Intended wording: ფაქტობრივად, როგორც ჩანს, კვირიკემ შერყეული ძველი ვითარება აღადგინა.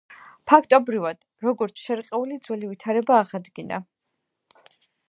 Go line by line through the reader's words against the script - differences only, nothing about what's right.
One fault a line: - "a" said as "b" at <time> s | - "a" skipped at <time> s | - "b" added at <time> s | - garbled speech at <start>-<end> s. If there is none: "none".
- "ჩანს კვირიკემ" skipped at 1.8 s